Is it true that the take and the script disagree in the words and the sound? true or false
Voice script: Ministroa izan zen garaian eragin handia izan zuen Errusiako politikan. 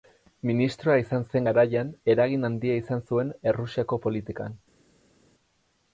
false